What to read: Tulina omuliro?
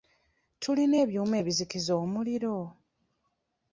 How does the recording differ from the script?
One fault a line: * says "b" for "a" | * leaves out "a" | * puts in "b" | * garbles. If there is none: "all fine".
* puts in "ebyuma ebizikiza"